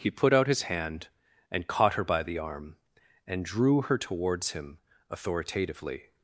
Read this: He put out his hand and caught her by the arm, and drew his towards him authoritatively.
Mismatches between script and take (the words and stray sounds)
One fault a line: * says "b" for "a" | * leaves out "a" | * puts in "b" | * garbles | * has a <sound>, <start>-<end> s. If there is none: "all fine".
* says "her" for "his"